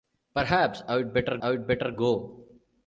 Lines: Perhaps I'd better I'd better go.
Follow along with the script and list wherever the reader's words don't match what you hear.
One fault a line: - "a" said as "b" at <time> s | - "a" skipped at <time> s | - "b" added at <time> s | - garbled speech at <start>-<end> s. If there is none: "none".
none